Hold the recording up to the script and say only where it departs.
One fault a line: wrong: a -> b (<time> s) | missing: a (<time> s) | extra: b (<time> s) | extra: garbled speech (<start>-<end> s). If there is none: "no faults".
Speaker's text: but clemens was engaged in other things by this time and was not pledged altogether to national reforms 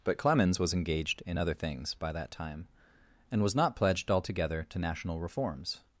wrong: this -> that (2.1 s)